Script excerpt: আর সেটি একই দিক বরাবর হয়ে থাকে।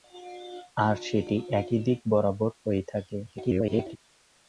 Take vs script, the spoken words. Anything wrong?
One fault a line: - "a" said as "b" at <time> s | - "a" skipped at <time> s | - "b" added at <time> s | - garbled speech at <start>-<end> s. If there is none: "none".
- garbled speech at 3.3-4.0 s